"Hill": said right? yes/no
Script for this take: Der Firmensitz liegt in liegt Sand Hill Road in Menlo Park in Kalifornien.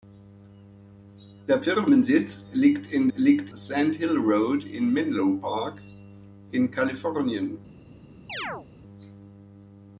yes